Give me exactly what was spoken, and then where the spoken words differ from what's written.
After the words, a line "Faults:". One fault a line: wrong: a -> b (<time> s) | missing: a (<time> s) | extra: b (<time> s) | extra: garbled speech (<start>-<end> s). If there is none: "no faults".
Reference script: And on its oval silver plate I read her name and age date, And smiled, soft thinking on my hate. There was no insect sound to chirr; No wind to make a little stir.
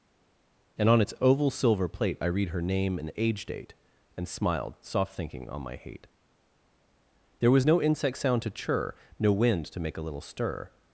And on its oval silver plate I read her name and age date, And smiled, soft thinking on my hate. There was no insect sound to chirr; No wind to make a little stir.
Faults:
no faults